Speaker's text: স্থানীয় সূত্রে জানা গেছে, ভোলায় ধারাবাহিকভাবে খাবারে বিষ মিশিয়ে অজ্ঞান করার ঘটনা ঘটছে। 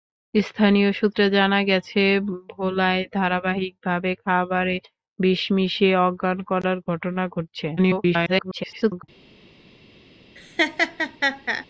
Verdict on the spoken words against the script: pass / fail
fail